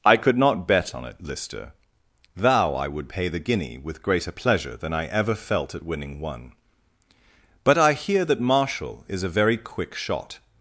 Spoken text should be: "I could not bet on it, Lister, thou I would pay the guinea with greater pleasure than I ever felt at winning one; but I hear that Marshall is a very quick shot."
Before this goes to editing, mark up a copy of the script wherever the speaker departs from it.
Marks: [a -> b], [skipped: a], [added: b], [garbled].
"I could not bet on it, Lister, thou I would pay the guinea with greater pleasure than I ever felt at winning one; but I hear that Marshall is a very quick shot."